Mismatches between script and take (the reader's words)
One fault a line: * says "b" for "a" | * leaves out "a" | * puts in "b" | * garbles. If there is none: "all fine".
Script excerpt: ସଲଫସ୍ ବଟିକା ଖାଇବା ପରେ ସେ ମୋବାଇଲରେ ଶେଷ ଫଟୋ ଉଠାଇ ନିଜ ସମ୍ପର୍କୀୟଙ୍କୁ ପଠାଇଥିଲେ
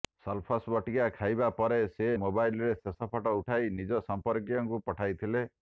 all fine